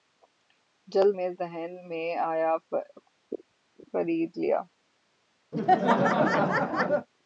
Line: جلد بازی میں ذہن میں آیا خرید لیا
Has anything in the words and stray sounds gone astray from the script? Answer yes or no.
yes